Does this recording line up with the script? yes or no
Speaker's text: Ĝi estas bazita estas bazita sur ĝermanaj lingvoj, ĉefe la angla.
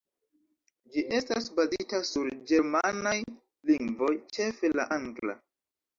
no